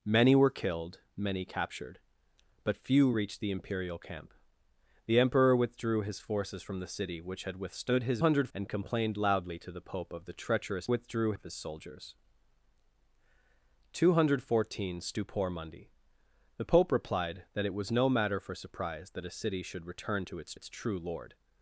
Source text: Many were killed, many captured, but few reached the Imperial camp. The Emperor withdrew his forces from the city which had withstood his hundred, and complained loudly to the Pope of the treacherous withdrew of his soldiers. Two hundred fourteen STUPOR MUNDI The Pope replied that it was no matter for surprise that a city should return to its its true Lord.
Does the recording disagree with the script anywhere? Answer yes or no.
no